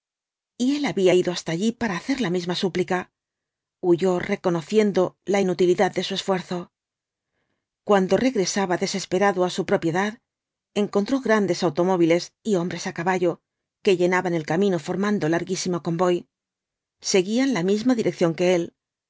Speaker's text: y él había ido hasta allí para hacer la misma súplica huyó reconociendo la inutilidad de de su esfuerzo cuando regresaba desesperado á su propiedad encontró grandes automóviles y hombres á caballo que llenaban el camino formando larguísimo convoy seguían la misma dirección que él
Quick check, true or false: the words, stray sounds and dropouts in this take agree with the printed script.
false